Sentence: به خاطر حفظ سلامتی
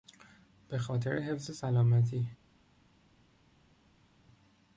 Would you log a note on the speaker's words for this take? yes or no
no